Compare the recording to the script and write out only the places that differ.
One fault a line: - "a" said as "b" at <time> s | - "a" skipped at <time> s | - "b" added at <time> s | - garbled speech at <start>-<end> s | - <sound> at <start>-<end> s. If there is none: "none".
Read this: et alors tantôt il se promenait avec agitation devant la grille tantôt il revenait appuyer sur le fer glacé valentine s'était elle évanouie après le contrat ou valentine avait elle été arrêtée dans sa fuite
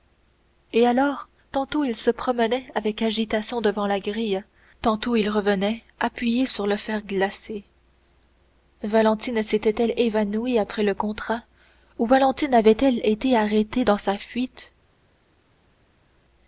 none